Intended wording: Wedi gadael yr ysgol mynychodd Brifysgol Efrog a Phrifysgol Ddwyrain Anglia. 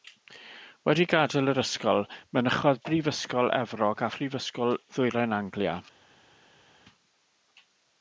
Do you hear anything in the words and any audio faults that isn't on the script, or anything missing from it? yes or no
no